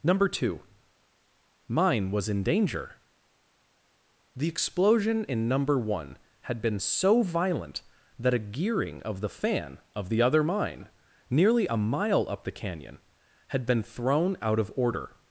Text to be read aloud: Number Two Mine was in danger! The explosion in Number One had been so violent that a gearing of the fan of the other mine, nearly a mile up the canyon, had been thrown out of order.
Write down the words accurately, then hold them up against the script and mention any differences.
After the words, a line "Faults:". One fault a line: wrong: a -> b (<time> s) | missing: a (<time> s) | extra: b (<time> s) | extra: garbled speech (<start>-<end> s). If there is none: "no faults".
Number Two Mine was in danger! The explosion in Number One had been so violent that a gearing of the fan of the other mine, nearly a mile up the canyon, had been thrown out of order.
Faults:
no faults